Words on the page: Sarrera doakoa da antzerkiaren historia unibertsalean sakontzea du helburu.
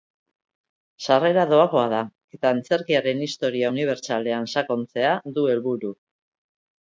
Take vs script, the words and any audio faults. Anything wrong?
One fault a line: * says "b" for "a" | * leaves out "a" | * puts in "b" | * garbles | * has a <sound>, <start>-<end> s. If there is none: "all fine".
* puts in "eta"